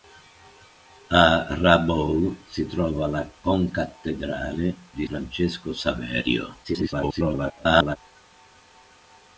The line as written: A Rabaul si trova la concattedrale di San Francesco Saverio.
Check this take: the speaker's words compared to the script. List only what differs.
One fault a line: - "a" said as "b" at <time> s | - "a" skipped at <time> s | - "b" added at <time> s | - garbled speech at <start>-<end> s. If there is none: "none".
- "San" skipped at 5.1 s
- garbled speech at 6.6-8.0 s